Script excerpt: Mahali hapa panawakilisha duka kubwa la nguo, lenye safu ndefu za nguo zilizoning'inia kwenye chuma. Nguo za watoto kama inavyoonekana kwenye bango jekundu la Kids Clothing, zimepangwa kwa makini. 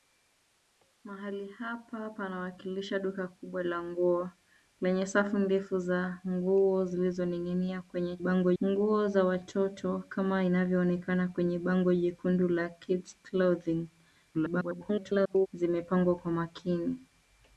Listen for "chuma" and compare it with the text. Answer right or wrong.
wrong